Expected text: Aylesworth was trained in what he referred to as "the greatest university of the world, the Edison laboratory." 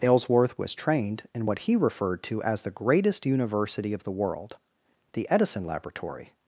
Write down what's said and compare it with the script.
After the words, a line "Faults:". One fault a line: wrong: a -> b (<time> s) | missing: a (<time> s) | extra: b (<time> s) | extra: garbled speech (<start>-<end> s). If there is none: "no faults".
Aylesworth was trained in what he referred to as "the greatest university of the world, the Edison laboratory."
Faults:
no faults